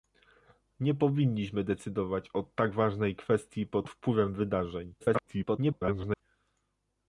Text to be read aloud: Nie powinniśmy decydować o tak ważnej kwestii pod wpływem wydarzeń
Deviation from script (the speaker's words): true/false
true